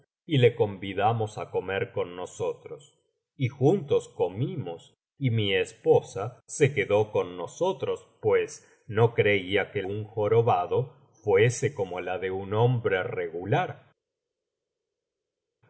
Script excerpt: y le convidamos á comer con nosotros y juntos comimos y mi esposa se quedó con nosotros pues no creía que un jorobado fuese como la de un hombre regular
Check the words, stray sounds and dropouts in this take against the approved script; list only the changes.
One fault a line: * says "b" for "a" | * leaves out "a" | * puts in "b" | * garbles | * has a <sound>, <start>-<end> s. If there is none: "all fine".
all fine